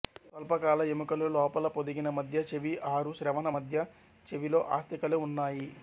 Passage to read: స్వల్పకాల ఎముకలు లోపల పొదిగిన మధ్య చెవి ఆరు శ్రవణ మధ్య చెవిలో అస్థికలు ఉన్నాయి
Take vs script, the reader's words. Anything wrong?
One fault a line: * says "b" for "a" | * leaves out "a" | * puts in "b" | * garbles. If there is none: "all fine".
all fine